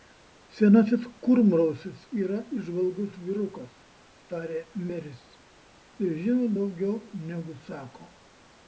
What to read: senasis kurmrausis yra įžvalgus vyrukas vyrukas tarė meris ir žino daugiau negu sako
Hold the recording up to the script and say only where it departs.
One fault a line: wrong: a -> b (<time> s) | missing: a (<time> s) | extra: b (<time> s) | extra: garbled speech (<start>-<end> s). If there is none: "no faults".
missing: vyrukas (3.7 s)